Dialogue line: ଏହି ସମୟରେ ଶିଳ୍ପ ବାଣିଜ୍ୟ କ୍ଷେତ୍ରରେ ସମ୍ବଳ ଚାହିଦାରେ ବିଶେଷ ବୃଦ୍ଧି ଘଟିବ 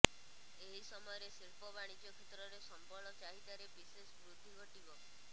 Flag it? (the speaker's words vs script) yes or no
no